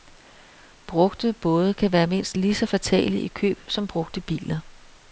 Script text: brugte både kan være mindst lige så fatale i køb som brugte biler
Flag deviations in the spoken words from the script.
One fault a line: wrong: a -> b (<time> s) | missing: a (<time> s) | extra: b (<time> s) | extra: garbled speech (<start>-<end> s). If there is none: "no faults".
no faults